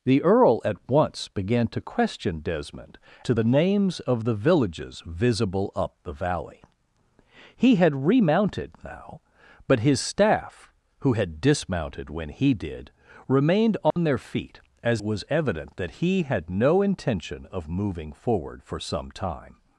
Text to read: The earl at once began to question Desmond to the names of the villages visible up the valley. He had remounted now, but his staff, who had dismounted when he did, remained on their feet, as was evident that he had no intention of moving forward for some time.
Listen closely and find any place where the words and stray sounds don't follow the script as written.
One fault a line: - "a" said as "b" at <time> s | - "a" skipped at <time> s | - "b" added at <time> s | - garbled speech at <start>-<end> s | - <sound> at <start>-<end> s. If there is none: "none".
- dropout at 13.9-14.0 s